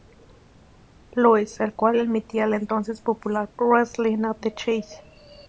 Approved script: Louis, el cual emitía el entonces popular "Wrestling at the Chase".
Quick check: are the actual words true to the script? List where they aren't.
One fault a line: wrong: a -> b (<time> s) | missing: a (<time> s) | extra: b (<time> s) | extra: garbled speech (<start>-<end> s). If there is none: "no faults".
no faults